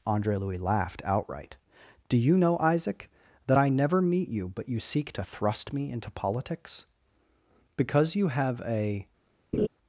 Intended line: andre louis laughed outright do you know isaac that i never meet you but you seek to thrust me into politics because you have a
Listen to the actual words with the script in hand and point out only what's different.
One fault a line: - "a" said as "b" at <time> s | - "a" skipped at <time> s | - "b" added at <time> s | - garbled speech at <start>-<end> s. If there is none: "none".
none